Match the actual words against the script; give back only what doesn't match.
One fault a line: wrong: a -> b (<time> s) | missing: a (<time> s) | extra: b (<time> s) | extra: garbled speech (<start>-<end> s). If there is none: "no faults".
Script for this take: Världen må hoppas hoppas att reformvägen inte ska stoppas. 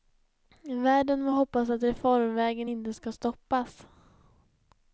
missing: hoppas (1.7 s)